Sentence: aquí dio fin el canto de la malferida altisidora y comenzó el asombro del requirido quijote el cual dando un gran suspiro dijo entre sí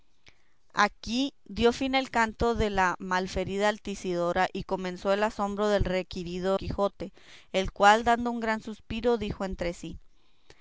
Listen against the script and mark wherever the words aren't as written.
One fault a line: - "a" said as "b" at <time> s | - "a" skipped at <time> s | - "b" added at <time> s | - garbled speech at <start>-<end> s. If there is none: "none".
none